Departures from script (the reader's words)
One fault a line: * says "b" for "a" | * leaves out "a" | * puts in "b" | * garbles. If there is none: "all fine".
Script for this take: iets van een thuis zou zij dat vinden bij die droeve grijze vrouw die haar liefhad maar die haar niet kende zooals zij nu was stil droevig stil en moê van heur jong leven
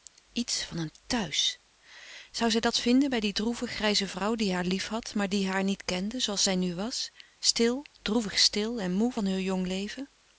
all fine